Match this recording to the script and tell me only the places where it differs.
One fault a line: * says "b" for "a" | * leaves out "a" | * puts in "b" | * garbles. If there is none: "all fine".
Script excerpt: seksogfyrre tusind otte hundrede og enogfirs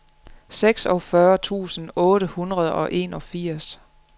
all fine